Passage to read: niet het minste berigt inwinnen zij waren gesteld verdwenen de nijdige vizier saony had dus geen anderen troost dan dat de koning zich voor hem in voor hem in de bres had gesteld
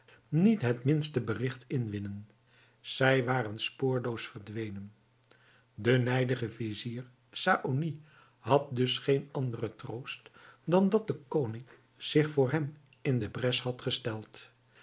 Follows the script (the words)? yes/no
no